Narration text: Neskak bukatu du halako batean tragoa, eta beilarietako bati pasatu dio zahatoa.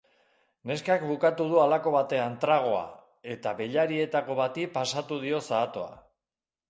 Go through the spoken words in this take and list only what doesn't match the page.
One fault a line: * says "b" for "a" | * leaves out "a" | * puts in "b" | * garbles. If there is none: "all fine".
all fine